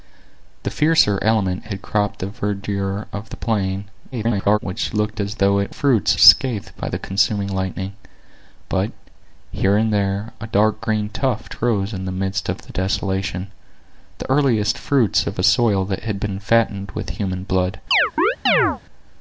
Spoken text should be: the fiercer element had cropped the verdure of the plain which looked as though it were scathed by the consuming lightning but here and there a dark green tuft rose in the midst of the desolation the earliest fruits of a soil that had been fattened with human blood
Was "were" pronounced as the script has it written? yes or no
no